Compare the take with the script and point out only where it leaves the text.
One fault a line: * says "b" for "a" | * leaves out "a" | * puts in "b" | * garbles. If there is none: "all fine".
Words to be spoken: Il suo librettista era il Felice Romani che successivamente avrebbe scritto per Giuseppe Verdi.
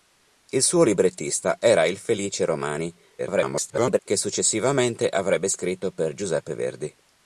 * garbles